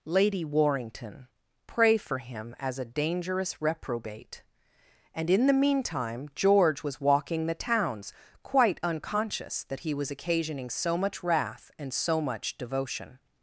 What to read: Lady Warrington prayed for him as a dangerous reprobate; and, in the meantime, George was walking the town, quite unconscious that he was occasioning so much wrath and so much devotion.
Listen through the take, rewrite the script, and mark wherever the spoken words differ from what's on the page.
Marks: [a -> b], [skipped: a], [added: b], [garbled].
Lady Warrington [prayed -> pray] for him as a dangerous reprobate; and, in the meantime, George was walking the [town, -> towns] quite unconscious that he was occasioning so much wrath and so much devotion.